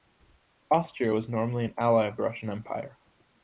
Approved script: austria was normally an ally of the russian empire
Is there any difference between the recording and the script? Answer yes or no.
no